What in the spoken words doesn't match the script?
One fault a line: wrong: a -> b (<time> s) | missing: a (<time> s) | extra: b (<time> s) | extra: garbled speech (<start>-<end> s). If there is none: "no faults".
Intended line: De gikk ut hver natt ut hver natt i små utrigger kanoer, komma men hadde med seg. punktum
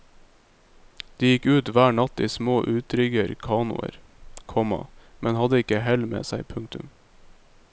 missing: ut hver natt (2.2 s)
extra: ikke hell (5.6 s)